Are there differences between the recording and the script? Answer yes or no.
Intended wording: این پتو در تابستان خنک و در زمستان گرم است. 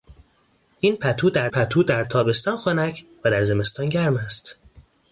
yes